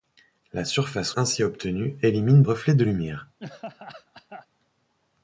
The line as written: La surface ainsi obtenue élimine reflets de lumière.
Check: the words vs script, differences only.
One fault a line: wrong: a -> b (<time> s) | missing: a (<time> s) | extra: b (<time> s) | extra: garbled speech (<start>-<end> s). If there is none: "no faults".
no faults